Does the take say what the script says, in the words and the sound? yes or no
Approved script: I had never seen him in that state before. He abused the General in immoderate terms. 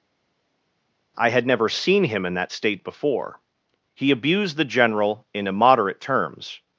yes